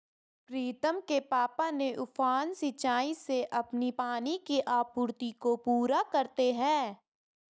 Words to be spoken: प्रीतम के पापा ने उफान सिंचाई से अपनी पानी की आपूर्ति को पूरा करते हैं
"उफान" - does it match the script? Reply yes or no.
yes